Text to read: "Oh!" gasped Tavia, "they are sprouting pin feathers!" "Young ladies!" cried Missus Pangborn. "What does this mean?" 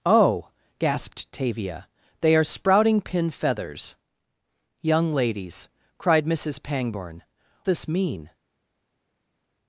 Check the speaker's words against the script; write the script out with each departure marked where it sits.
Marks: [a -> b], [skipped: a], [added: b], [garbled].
"Oh!" gasped Tavia, "they are sprouting pin feathers!" "Young ladies!" cried Missus Pangborn. [skipped: "What does] this mean?"